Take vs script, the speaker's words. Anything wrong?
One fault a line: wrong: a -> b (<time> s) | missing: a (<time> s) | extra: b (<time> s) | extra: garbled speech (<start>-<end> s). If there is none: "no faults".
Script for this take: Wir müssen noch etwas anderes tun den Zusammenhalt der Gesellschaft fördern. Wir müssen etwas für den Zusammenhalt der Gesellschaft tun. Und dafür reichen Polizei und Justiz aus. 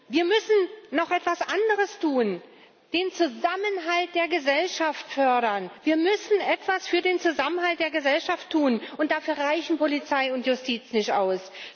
extra: nicht (10.9 s)